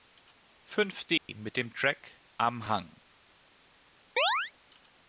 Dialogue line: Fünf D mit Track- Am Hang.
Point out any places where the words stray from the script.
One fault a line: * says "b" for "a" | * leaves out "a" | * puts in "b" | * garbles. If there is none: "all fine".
* puts in "dem"